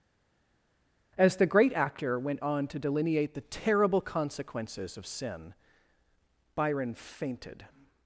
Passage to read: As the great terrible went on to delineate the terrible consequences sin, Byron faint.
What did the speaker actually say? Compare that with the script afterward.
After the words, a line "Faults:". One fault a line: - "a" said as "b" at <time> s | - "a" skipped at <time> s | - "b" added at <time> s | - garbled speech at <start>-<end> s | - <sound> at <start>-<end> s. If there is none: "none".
As the great actor went on to delineate the terrible consequences of sin, Byron fainted.
Faults:
- "terrible" said as "actor" at 1.7 s
- "of" added at 5.0 s
- "faint" said as "fainted" at 6.9 s